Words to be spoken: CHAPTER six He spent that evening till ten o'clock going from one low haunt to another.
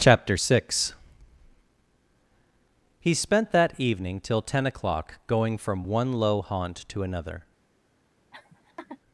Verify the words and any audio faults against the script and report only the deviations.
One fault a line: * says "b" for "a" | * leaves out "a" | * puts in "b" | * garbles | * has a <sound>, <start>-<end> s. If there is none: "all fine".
* has a laugh, 8.3-9.0 s